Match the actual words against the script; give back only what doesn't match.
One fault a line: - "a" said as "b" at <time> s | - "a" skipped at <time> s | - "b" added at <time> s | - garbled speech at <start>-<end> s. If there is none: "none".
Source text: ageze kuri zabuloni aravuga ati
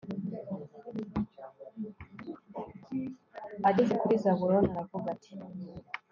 none